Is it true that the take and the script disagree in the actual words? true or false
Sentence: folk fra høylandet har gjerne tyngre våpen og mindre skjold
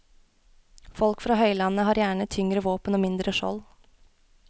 false